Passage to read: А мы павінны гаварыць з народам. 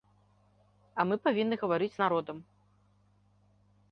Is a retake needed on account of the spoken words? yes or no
no